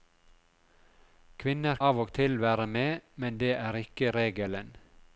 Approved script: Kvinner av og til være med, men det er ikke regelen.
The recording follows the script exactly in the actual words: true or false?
true